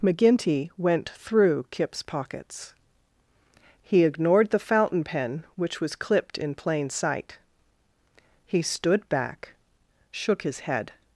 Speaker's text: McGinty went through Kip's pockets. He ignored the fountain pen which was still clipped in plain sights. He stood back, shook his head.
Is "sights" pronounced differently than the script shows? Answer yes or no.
yes